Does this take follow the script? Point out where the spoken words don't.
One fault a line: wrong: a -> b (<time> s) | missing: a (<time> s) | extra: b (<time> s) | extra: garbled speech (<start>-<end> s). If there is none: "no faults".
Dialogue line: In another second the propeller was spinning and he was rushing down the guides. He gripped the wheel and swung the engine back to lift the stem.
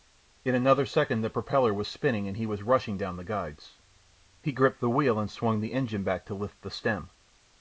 no faults